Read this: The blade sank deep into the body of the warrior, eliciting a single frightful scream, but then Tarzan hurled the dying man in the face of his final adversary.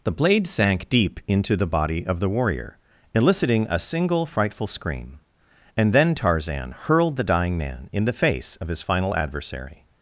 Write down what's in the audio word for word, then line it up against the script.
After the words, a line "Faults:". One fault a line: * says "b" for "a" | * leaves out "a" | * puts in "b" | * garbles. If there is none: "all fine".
The blade sank deep into the body of the warrior, eliciting a single frightful scream, and then Tarzan hurled the dying man in the face of his final adversary.
Faults:
* says "and" for "but"